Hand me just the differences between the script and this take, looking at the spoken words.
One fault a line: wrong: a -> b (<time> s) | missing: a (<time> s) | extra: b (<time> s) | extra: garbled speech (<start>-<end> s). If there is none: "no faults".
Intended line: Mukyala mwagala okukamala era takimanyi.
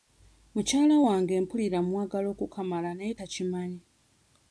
extra: wange mpulira (1.1 s)
wrong: era -> naye (3.0 s)